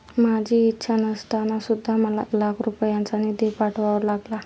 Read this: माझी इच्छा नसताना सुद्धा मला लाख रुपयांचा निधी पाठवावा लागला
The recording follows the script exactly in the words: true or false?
true